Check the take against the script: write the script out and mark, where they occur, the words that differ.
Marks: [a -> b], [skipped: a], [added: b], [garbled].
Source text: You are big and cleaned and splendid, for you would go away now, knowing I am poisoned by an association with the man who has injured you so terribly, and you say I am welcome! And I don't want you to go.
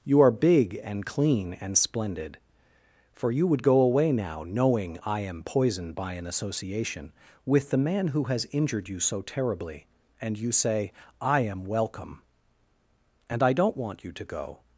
You are big and [cleaned -> clean] and splendid, for you would go away now, knowing I am poisoned by an association with the man who has injured you so terribly, and you say I am welcome! And I don't want you to go.